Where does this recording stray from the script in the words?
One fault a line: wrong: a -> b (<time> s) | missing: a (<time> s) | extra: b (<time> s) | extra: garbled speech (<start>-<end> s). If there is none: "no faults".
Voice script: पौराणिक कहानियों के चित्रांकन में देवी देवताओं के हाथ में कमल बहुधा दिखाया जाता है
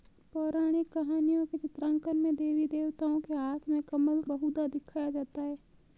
no faults